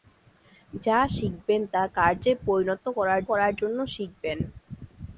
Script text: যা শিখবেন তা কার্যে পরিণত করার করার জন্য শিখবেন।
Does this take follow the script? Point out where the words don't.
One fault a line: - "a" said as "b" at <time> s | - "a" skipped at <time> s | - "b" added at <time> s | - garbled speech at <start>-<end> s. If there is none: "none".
none